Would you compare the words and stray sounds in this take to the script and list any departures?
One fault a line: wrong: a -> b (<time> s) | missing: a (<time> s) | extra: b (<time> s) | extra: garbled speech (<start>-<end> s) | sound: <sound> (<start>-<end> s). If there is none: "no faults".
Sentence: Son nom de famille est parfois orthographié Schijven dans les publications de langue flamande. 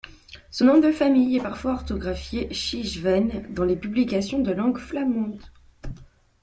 no faults